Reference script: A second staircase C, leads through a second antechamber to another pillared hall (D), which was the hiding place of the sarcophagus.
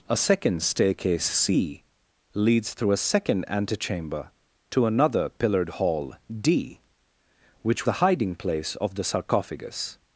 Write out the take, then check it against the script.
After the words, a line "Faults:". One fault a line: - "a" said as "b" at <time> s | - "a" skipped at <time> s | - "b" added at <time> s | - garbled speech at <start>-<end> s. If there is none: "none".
A second staircase C, leads through a second antechamber to another pillared hall (D), which the hiding place of the sarcophagus.
Faults:
- "was" skipped at 7.9 s